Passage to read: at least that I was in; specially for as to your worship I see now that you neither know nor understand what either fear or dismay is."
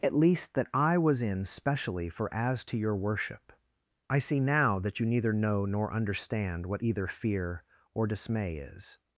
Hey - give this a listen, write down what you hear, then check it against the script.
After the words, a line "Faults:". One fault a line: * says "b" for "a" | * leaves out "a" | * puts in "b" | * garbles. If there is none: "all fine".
at least that I was in; specially for as to your worship I see now that you neither know nor understand what either fear or dismay is."
Faults:
all fine